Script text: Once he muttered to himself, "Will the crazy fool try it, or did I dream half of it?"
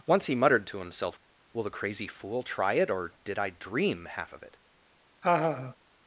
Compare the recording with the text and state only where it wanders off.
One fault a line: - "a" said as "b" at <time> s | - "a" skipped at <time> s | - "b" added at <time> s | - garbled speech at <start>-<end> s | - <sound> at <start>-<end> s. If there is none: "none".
- laugh at 5.2-5.8 s